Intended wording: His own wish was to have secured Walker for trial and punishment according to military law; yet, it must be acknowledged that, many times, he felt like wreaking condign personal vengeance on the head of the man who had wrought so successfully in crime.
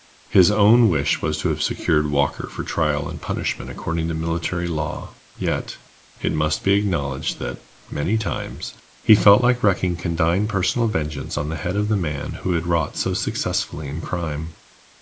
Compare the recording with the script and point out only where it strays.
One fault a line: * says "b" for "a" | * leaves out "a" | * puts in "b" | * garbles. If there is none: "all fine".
all fine